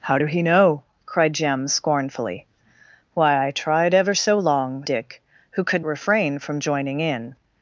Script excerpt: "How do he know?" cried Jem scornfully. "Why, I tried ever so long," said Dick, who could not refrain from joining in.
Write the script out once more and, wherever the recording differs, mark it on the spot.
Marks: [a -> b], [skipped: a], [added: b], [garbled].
"How do he know?" cried Jem scornfully. "Why, I tried ever so long," [skipped: said] Dick, who could [skipped: not] refrain from joining in.